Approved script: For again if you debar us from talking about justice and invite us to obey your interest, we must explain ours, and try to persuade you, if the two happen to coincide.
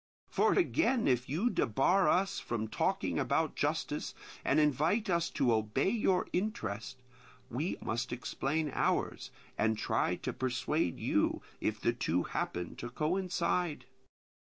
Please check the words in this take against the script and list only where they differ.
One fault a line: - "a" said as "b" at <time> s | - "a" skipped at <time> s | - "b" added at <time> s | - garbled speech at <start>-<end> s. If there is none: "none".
none